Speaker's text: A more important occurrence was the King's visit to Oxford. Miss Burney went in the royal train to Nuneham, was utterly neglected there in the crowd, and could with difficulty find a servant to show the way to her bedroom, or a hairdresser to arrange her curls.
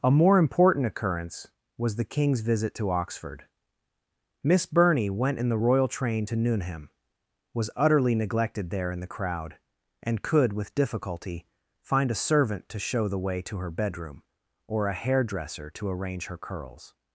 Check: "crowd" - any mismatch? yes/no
no